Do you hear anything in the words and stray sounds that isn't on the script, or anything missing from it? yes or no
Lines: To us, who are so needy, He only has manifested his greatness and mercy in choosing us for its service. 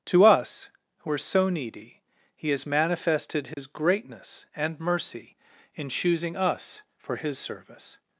yes